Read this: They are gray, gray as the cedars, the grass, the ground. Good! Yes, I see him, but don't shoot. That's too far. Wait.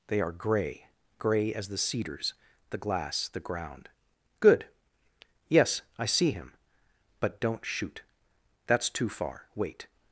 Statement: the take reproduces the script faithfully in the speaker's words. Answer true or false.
false